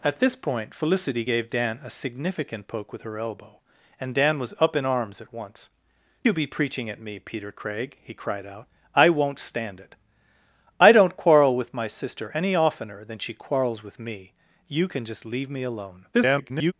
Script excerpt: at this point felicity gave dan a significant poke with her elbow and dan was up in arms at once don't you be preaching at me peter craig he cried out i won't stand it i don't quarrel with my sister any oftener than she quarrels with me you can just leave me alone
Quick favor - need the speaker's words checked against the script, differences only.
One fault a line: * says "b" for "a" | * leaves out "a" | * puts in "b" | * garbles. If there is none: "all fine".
* leaves out "don't"
* garbles